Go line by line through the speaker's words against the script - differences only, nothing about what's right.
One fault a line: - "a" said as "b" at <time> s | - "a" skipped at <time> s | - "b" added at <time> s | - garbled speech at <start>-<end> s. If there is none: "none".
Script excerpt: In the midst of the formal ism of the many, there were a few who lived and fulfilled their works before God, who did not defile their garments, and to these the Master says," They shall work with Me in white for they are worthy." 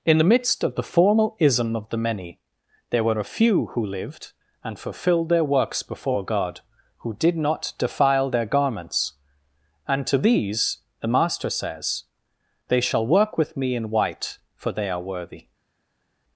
none